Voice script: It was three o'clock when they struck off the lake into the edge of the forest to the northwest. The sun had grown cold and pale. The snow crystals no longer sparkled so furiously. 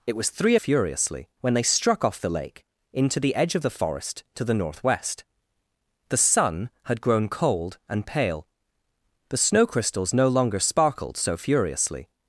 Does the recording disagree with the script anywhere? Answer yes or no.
yes